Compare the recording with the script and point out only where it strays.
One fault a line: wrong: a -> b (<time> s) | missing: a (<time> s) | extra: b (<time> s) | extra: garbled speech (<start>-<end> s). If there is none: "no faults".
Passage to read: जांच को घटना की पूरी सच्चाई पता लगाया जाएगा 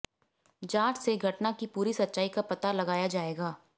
wrong: को -> से (1.0 s)
extra: का (2.3 s)